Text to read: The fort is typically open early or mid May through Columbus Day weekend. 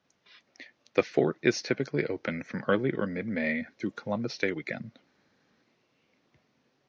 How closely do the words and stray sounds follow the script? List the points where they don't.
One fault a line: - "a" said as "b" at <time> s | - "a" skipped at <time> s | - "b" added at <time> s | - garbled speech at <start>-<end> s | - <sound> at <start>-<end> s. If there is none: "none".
- "from" added at 2.4 s